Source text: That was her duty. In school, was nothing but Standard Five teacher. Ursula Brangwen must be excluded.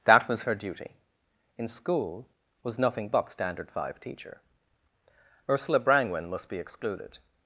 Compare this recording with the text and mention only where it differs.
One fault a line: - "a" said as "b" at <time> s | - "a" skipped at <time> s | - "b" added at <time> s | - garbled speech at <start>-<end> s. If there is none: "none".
none